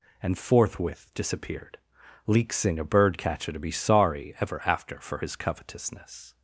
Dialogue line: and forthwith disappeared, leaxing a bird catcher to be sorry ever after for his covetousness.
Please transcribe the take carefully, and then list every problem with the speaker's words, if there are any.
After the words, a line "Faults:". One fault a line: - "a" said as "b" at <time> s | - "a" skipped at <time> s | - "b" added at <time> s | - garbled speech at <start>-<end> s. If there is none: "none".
and forthwith disappeared, leaxing a bird catcher to be sorry ever after for his covetousness.
Faults:
none